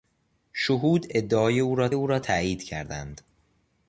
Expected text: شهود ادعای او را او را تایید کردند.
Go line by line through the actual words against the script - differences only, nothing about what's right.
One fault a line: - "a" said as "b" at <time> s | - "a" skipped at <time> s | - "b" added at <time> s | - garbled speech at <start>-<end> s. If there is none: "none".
none